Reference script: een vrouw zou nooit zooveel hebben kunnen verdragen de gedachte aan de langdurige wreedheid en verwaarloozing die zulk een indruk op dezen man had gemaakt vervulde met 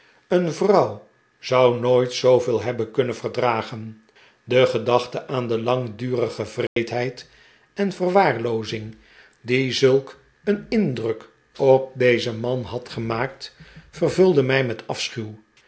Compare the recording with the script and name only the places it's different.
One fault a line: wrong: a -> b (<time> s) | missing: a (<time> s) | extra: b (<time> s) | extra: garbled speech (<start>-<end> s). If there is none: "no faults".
extra: mij (14.4 s)